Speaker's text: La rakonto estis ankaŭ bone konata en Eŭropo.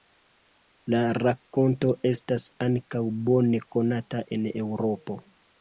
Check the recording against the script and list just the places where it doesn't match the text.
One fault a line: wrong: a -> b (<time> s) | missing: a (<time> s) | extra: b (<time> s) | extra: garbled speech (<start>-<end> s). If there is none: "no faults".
wrong: estis -> estas (2.1 s)